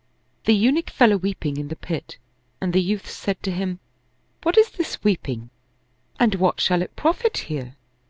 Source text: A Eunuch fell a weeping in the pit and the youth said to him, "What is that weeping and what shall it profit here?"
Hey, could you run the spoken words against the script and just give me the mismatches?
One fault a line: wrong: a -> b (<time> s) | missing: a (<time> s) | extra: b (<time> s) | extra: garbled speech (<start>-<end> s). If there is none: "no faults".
wrong: A -> The (0.5 s)
wrong: that -> this (4.7 s)